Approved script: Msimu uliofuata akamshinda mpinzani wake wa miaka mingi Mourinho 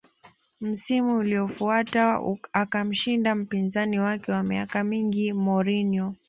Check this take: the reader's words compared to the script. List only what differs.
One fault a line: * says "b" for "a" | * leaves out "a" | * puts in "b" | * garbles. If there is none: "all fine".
all fine